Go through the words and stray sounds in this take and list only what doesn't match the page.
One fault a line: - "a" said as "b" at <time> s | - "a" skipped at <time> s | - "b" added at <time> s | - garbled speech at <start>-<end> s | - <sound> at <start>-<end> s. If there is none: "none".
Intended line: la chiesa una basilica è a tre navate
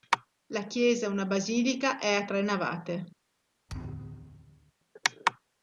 - thud at 3.7-4.7 s